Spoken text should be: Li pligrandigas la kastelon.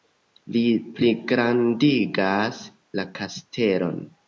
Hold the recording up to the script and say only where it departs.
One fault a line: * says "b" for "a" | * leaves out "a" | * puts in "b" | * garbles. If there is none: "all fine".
all fine